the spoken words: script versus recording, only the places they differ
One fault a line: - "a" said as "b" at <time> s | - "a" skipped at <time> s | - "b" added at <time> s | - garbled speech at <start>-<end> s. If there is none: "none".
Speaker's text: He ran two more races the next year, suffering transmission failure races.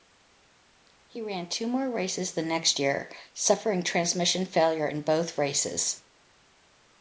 - "in both" added at 4.8 s